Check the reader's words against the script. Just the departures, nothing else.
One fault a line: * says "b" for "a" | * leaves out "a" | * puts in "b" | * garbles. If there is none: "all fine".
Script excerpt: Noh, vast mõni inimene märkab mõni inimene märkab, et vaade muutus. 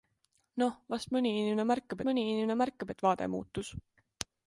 all fine